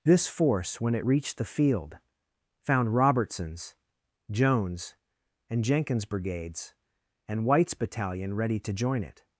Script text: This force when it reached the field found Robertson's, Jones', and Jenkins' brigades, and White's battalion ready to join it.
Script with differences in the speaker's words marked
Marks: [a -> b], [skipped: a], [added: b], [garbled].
This force when it reached the field found Robertson's, Jones', and Jenkins' brigades, and White's battalion ready to join it.